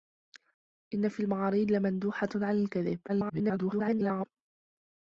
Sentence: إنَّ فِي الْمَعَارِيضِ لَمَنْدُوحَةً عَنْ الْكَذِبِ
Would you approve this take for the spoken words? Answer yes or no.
no